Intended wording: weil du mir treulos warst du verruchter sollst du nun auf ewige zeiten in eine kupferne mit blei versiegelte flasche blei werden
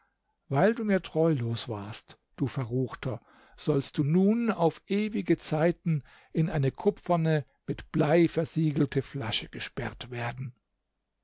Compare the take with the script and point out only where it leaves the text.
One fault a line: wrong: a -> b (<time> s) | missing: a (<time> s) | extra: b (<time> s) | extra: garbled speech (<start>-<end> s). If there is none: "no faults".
wrong: blei -> gesperrt (9.5 s)